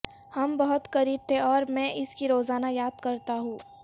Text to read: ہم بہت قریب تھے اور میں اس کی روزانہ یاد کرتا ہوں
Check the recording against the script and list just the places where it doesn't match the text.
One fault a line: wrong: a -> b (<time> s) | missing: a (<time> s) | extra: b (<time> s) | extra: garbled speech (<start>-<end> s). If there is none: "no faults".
no faults